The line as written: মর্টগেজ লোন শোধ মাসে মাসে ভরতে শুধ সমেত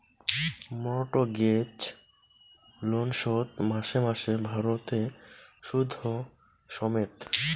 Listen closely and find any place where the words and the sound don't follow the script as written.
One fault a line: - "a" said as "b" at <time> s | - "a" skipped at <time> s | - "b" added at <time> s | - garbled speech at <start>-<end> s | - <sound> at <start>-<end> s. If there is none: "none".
none